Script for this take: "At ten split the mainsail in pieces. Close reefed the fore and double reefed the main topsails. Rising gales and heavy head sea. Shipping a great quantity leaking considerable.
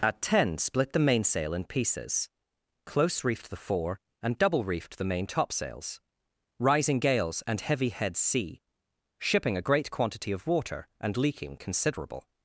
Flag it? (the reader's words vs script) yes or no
yes